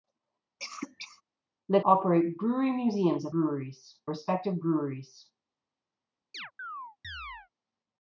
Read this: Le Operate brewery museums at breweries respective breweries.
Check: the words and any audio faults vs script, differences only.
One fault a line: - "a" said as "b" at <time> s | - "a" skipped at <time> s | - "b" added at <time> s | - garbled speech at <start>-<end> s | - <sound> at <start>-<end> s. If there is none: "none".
- cough at 0.6-1.2 s
- chirp at 6.3-7.5 s